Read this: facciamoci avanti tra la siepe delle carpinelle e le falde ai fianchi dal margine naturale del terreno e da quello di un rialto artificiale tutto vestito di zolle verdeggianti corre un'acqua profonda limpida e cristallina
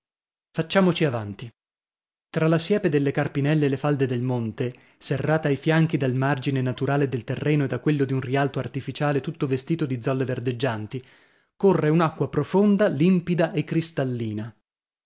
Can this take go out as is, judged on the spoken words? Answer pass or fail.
fail